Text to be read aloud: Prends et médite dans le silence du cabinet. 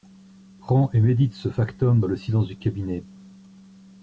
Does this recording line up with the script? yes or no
no